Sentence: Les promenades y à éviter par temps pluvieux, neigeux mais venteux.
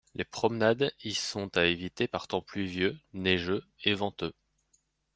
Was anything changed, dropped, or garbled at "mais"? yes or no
yes